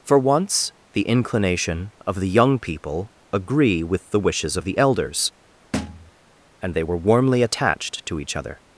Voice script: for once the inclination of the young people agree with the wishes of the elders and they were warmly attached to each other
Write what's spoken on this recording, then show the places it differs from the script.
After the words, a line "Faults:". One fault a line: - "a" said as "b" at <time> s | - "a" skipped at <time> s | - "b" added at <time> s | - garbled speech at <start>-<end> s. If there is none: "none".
for once the inclination of the young people agree with the wishes of the elders and they were warmly attached to each other
Faults:
none